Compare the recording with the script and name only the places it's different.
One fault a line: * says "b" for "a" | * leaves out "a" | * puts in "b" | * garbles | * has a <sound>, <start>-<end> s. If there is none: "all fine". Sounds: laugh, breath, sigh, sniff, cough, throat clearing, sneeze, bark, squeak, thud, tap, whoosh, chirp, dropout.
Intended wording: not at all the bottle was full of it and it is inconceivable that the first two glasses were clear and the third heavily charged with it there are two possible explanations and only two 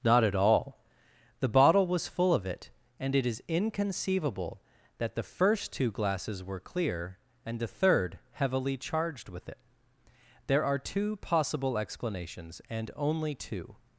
all fine